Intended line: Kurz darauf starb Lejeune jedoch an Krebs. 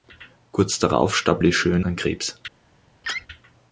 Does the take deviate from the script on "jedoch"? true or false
true